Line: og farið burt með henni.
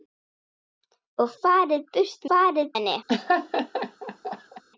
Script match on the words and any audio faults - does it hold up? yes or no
no